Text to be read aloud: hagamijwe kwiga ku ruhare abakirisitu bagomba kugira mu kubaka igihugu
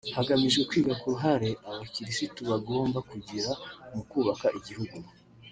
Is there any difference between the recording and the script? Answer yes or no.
no